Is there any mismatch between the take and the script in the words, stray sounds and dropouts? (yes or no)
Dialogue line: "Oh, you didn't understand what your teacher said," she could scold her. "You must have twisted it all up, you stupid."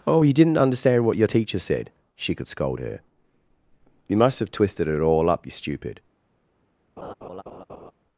yes